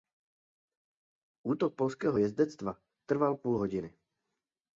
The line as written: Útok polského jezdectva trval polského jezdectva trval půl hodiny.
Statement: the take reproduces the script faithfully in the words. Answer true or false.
false